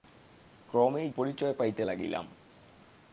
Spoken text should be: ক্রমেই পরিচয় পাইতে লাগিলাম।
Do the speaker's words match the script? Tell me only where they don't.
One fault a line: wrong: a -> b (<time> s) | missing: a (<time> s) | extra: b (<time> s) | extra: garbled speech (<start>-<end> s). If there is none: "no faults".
no faults